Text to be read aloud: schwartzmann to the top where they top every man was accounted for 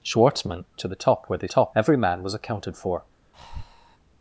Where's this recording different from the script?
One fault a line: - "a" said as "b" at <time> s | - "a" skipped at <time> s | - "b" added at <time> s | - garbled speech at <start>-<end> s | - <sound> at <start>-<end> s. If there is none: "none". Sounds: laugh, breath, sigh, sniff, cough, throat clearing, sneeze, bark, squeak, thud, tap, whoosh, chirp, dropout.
- breath at 3.3-4.0 s